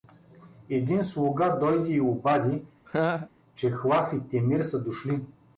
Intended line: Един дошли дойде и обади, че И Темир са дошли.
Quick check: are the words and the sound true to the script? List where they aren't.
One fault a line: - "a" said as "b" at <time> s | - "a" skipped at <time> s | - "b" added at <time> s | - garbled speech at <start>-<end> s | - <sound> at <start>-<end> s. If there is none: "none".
- "дошли" said as "слуга" at 1.0 s
- laugh at 2.9-3.3 s
- "Хлав" added at 3.7 s